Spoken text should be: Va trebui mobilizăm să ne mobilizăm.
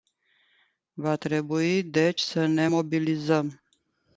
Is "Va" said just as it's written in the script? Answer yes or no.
yes